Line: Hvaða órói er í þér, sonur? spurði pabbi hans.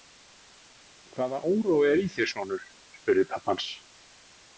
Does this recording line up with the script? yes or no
yes